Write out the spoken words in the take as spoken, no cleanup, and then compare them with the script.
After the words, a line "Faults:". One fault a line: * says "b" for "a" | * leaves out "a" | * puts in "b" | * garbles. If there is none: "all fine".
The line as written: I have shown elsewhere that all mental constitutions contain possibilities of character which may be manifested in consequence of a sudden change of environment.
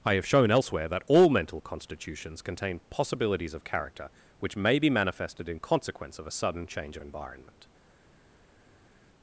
I have shown elsewhere that all mental constitutions contain possibilities of character which may be manifested in consequence of a sudden change of environment.
Faults:
all fine